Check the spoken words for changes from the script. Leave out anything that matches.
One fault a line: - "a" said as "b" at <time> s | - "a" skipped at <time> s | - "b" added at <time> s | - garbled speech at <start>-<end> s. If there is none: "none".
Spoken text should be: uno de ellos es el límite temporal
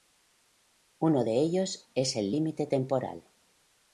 none